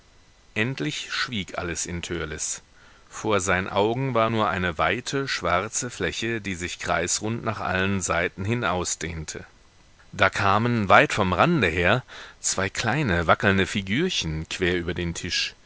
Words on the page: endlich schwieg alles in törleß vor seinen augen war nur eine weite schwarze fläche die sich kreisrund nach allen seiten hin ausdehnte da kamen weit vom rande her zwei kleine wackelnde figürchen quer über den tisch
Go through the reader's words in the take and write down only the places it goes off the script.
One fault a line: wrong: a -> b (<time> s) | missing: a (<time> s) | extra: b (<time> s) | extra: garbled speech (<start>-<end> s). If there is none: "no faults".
no faults